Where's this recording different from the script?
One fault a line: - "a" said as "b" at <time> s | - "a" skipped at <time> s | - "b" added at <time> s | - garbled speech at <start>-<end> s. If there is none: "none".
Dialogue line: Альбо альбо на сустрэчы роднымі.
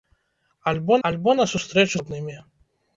none